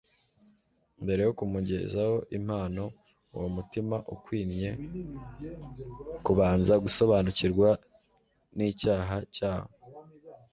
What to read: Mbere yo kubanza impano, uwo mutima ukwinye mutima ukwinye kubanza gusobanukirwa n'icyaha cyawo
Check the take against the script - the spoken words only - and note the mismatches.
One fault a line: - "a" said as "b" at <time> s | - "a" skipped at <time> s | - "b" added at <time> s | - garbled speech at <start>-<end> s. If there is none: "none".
- "kubanza" said as "kumugezaho" at 1.4 s
- "mutima ukwinye" skipped at 4.7 s